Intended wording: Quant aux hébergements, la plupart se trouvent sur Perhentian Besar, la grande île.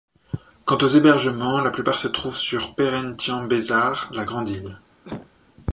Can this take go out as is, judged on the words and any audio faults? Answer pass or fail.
fail